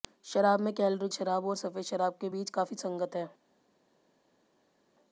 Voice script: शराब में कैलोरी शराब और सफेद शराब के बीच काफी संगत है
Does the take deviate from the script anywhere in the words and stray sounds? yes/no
no